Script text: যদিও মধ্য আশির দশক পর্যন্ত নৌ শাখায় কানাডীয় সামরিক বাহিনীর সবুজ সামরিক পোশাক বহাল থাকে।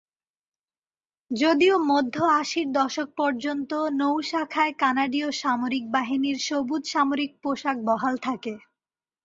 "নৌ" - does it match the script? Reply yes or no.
yes